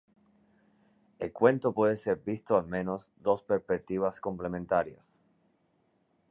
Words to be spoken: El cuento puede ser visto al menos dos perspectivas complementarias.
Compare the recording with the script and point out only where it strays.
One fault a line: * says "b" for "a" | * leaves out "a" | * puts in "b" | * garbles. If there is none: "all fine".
all fine